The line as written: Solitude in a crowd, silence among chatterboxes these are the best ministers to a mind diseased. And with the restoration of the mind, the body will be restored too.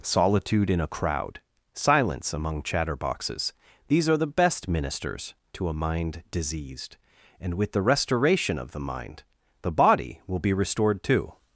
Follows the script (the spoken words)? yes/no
yes